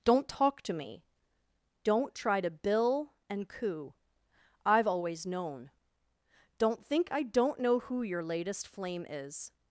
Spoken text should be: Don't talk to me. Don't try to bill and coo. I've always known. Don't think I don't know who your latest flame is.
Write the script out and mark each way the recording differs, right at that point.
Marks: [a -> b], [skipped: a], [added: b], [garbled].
Don't talk to me. Don't try to bill and coo. I've always known. Don't think I don't know who your latest flame is.